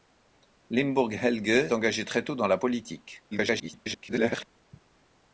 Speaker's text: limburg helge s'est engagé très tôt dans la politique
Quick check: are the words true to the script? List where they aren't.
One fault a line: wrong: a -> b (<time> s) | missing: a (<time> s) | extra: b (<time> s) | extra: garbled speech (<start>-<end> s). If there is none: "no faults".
missing: s'est (1.7 s)
extra: garbled speech (3.3-4.5 s)